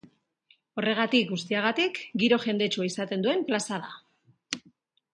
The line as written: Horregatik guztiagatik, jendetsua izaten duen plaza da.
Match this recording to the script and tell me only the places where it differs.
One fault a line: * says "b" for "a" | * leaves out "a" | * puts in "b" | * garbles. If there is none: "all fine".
* puts in "giro"